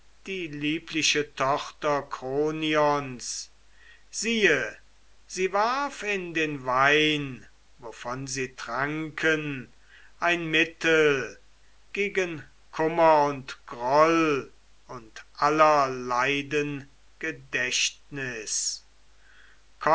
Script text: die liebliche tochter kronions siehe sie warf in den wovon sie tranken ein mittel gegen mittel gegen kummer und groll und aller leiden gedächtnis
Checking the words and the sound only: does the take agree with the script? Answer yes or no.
no